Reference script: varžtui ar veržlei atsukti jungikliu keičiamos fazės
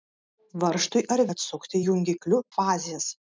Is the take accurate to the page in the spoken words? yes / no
no